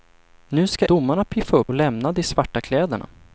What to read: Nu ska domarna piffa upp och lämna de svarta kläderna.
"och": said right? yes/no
yes